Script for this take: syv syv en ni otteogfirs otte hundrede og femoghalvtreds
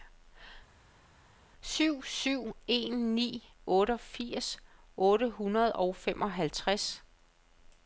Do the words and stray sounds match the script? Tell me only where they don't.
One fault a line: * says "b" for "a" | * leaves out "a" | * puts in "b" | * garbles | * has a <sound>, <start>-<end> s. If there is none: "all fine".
all fine